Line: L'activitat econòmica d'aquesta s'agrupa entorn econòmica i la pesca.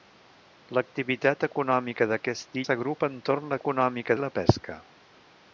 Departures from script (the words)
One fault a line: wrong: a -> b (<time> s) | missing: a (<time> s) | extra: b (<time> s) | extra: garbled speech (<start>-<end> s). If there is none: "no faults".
no faults